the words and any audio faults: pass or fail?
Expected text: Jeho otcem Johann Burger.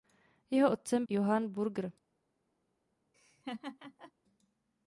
fail